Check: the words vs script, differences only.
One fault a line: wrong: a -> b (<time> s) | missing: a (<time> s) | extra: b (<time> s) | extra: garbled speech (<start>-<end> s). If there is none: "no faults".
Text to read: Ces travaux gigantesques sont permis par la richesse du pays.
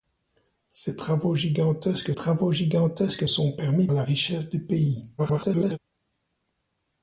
extra: travaux gigantesques (2.1 s)
missing: par (3.9 s)
extra: garbled speech (5.2-5.8 s)